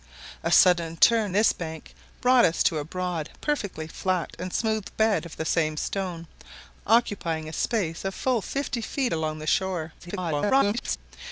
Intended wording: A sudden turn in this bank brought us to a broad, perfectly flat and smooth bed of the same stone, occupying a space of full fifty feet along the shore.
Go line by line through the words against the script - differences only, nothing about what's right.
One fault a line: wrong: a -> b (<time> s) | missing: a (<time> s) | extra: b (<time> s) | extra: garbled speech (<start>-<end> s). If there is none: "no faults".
missing: in (1.3 s)
extra: garbled speech (10.0-11.0 s)